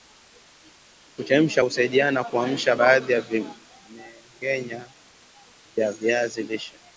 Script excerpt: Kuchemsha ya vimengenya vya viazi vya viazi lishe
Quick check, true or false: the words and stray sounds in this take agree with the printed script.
false